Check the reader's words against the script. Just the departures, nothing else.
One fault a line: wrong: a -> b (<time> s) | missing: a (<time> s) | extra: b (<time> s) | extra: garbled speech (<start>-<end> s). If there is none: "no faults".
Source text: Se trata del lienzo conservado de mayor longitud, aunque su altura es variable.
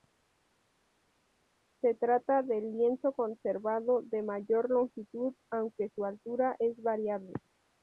no faults